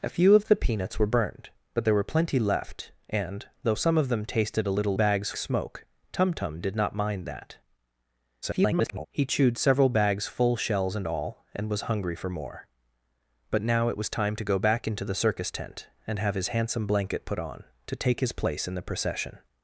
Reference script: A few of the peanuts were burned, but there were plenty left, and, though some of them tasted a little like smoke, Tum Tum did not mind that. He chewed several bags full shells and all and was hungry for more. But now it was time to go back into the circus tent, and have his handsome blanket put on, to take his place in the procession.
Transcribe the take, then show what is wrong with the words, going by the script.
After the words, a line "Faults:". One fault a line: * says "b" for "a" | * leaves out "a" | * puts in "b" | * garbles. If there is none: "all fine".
A few of the peanuts were burned, but there were plenty left, and, though some of them tasted a little bags smoke, Tum Tum did not mind that. [garbled] He chewed several bags full shells and all and was hungry for more. But now it was time to go back into the circus tent, and have his handsome blanket put on, to take his place in the procession.
Faults:
* says "bags" for "like"
* garbles